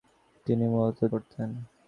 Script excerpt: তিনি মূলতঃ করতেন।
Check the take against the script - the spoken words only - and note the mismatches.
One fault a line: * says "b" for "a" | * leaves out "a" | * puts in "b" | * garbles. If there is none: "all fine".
all fine